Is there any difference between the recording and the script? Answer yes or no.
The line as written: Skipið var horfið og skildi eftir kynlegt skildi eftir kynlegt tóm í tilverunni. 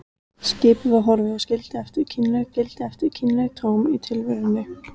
no